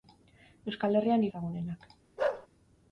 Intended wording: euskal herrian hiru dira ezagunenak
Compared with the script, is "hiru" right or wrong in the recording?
wrong